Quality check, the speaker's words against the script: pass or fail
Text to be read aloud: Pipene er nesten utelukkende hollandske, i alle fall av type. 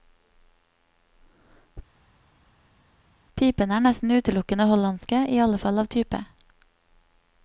pass